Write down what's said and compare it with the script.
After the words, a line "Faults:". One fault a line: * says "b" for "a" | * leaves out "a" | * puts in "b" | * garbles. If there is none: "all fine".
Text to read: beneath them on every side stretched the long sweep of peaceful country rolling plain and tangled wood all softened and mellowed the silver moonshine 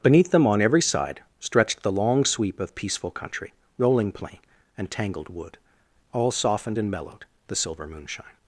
beneath them on every side stretched the long sweep of peaceful country rolling plain and tangled wood all softened and mellowed the silver moonshine
Faults:
all fine